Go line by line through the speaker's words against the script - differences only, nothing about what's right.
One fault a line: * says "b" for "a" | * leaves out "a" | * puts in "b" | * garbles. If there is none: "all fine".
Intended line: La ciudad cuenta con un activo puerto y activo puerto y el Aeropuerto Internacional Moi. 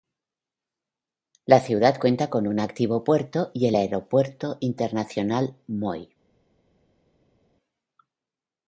* leaves out "activo puerto y"